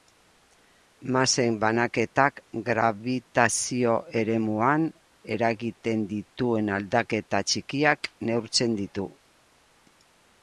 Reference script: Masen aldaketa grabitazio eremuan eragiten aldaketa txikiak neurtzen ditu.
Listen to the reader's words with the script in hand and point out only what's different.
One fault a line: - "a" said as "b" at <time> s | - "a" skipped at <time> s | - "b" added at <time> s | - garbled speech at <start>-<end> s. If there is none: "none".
- "aldaketa" said as "banaketak" at 1.6 s
- "dituen" added at 6.1 s